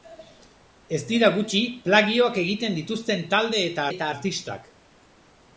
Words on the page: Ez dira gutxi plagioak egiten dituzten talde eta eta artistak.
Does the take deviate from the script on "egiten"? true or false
false